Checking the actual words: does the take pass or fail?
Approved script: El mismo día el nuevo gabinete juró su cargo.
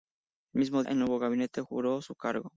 fail